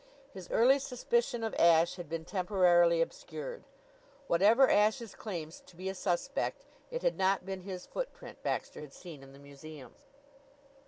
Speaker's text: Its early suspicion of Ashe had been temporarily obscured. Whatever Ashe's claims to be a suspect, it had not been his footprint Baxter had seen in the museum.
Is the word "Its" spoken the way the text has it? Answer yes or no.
no